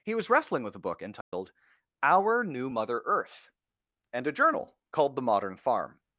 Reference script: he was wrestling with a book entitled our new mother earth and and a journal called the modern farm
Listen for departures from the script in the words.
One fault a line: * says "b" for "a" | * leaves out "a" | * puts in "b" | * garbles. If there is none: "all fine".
* leaves out "and"